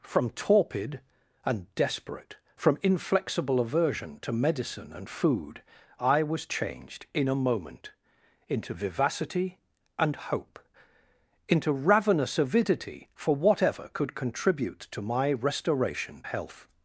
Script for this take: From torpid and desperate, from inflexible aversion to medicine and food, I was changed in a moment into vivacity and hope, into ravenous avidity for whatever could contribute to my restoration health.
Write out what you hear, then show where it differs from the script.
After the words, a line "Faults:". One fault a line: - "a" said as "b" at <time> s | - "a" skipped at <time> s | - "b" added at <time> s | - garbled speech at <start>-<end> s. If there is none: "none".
From torpid and desperate, from inflexible aversion to medicine and food, I was changed in a moment into vivacity and hope, into ravenous avidity for whatever could contribute to my restoration health.
Faults:
none